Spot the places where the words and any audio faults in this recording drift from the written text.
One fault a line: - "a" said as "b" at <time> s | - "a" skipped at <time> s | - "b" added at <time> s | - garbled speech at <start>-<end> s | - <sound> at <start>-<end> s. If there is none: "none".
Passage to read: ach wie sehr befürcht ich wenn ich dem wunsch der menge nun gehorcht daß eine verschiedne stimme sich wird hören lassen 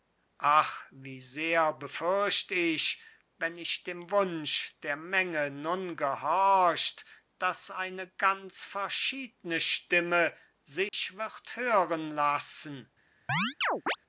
- "ganz" added at 8.1 s
- dropout at 10.9-10.9 s
- chirp at 13.3-14.0 s